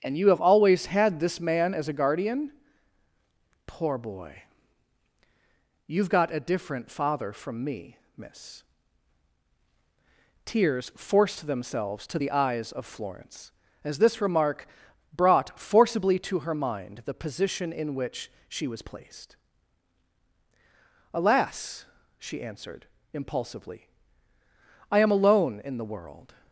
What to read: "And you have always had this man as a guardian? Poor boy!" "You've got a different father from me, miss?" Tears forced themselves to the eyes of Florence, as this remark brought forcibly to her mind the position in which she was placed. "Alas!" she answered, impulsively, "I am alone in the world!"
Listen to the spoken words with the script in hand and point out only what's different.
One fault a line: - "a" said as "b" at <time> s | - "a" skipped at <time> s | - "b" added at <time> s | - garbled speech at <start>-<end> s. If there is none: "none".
none